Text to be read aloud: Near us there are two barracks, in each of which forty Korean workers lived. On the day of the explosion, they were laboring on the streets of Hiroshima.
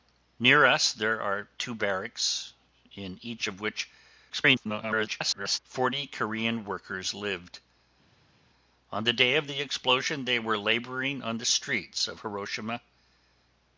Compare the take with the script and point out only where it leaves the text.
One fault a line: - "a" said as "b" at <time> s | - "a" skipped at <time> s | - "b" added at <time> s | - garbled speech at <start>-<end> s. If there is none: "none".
- garbled speech at 4.3-5.6 s